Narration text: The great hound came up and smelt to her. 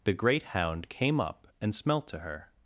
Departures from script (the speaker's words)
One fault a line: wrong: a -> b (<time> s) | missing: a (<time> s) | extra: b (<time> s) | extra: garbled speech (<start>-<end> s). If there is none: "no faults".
no faults